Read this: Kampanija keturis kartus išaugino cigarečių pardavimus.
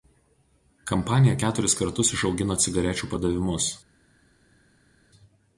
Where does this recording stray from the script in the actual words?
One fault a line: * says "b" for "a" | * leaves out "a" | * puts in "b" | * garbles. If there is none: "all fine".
all fine